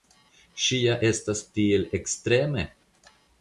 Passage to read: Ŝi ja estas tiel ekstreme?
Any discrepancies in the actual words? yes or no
no